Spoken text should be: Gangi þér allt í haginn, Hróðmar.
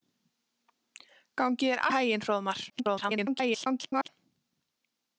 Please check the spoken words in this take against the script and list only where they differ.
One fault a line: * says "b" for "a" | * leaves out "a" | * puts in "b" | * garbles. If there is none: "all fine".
* leaves out "allt"
* garbles